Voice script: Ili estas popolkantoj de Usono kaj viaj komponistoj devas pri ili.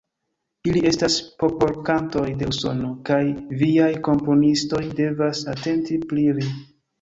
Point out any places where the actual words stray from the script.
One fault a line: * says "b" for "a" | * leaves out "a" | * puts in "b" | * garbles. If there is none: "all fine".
* puts in "atenti"